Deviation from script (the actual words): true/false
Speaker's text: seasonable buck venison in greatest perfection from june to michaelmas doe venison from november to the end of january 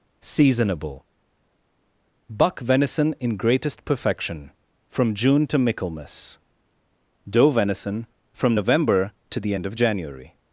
false